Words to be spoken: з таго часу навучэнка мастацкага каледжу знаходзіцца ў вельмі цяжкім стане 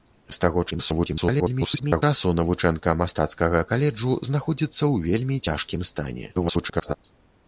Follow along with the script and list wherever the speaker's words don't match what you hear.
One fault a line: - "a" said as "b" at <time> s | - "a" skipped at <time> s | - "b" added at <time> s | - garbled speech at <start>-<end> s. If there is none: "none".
- garbled speech at 0.7-2.0 s
- garbled speech at 6.3-6.9 s